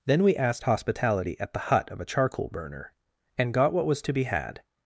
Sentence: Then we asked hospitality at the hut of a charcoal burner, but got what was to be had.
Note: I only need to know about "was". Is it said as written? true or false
true